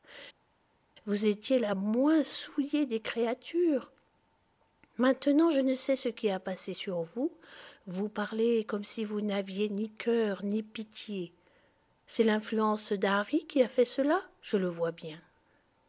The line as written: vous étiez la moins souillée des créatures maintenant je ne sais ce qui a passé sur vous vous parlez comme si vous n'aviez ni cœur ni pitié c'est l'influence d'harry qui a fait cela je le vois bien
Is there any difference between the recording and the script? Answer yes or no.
no